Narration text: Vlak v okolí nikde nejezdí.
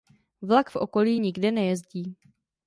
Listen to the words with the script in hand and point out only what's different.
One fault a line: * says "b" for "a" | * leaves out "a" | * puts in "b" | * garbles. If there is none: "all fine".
all fine